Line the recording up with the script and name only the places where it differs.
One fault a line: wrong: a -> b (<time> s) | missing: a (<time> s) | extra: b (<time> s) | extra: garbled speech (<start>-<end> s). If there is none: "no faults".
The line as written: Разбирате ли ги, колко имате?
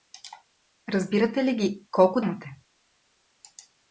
no faults